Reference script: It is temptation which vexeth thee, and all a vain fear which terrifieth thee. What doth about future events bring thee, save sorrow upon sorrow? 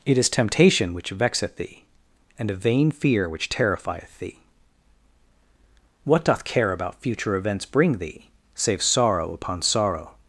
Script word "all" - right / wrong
wrong